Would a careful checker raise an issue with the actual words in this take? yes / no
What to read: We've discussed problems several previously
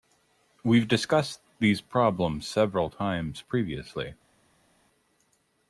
yes